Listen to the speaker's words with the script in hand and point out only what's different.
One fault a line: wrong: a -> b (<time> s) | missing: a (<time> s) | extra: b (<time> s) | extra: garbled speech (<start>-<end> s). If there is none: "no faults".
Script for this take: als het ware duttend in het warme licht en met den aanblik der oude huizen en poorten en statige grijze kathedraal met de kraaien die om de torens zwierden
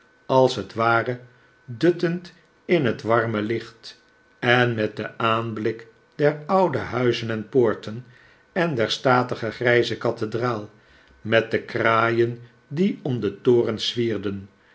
extra: der (8.8 s)